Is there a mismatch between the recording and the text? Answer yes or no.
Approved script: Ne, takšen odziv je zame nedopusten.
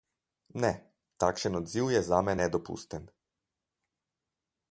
no